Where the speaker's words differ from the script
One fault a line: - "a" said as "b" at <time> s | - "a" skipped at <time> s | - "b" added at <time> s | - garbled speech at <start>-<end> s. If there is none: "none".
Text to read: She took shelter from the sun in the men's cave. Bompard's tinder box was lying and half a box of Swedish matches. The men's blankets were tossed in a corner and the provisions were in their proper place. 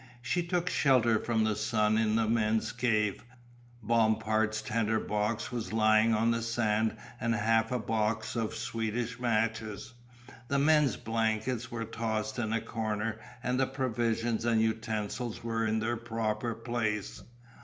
- "on the sand" added at 6.1 s
- "and utensils" added at 14.4 s